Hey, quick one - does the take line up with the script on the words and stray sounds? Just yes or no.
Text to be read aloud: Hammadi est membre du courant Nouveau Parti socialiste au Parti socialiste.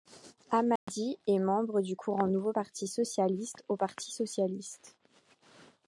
no